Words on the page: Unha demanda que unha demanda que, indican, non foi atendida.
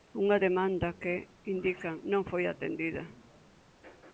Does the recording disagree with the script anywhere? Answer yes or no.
yes